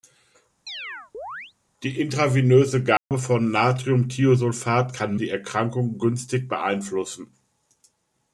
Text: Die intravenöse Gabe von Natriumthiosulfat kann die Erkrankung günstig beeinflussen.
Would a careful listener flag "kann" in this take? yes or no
no